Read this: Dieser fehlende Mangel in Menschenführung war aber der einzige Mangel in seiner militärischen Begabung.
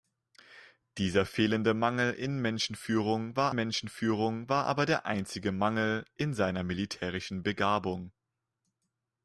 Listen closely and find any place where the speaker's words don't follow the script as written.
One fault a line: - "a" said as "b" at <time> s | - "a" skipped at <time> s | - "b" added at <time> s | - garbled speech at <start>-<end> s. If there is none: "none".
- "Menschenführung war" added at 3.5 s